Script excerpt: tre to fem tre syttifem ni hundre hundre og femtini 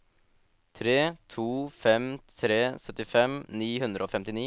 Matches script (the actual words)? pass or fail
fail